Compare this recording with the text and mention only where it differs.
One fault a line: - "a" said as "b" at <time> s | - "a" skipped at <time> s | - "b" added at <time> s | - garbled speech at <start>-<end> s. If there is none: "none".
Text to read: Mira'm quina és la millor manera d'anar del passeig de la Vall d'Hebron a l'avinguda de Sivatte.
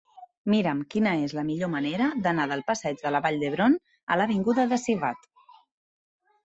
none